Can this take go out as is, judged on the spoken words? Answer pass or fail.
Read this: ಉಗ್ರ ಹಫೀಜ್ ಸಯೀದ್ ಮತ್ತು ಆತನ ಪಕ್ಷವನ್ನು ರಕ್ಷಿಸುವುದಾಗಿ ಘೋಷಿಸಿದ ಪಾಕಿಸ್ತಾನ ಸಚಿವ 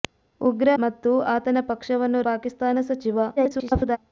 fail